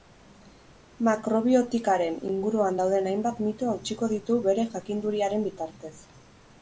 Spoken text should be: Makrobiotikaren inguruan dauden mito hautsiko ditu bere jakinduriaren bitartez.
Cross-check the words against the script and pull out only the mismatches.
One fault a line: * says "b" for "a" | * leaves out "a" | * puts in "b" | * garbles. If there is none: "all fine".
* puts in "hainbat"